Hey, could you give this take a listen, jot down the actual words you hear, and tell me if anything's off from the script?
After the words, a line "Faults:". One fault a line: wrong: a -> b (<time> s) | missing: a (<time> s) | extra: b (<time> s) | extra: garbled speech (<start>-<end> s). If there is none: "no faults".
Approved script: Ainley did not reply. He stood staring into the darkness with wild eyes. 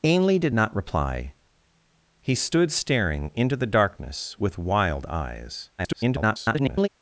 Ainley did not reply. He stood staring into the darkness with wild eyes. [garbled]
Faults:
extra: garbled speech (5.8-6.9 s)